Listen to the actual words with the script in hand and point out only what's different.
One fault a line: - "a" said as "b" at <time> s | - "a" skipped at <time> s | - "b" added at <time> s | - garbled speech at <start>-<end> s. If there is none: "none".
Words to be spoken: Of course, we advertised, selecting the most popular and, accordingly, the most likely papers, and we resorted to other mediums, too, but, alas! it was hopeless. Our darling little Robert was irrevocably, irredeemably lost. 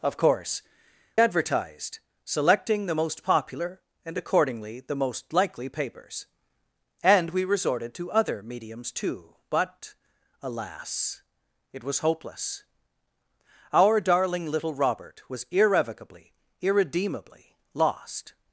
- "we" skipped at 0.6 s